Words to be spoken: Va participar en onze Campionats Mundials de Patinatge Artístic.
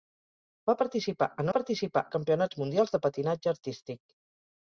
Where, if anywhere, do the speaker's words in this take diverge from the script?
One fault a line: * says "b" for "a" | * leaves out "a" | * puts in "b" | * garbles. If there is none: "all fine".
* says "participar" for "onze"